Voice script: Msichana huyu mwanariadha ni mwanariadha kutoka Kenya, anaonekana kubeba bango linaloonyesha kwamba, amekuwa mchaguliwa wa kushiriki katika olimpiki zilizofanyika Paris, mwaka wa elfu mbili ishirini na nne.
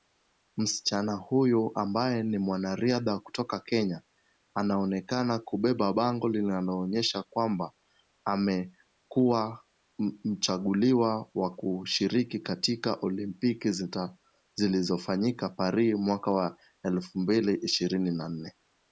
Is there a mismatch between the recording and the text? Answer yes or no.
yes